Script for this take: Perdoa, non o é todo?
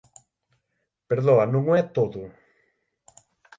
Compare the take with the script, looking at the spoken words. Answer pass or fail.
pass